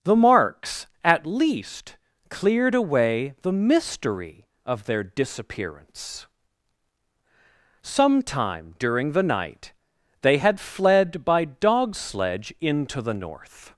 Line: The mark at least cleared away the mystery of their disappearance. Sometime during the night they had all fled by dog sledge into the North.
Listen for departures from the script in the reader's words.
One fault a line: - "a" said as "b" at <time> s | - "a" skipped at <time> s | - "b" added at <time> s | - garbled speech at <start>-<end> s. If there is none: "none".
- "mark" said as "marks" at 0.1 s
- "all" skipped at 10.6 s